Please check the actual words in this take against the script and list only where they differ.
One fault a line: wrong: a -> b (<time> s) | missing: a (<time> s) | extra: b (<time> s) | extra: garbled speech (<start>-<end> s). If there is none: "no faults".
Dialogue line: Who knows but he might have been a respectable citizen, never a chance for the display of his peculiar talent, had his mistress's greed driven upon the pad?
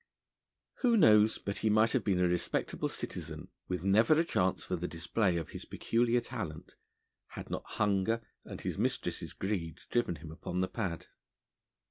extra: with (3.7 s)
extra: not hunger and (7.5 s)
extra: him (10.2 s)